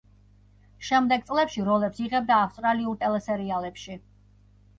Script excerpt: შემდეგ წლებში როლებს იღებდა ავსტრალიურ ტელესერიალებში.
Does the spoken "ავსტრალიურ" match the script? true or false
true